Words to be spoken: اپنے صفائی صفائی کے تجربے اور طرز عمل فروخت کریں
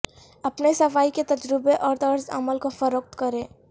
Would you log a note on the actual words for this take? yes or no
yes